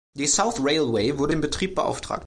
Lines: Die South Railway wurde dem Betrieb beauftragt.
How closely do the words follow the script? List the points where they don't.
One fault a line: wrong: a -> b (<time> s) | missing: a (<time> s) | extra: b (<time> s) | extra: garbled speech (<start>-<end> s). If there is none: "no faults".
no faults